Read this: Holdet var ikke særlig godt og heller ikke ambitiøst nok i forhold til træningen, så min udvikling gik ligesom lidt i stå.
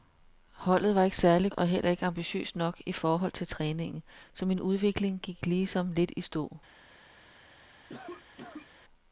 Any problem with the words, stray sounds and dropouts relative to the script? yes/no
yes